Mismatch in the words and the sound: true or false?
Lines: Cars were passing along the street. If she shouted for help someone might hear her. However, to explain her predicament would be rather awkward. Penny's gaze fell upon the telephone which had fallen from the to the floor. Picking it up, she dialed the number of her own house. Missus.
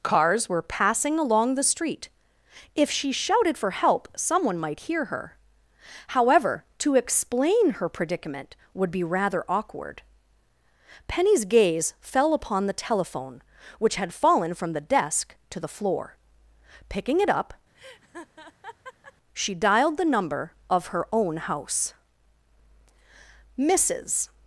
true